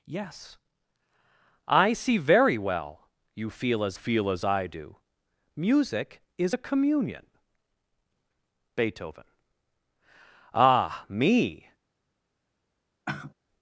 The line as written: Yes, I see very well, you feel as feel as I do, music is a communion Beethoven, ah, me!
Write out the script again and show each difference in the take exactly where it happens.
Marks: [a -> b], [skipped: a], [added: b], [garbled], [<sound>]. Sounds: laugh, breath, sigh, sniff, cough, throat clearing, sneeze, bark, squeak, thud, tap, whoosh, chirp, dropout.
Yes, I see very well, you feel as feel as I do, music is a communion Beethoven, ah, me! [sigh]